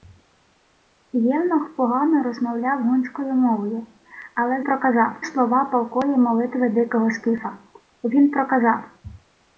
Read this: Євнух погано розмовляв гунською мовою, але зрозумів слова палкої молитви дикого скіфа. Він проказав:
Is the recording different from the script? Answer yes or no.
yes